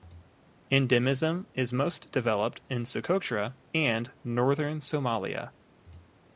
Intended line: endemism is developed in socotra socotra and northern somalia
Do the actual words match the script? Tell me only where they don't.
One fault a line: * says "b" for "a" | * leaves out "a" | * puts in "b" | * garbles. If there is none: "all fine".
* puts in "most"
* leaves out "socotra"